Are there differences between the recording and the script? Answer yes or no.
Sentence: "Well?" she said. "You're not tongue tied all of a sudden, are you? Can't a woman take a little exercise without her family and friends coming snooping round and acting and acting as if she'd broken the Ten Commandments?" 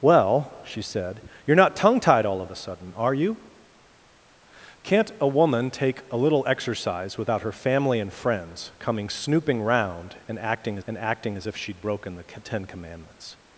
no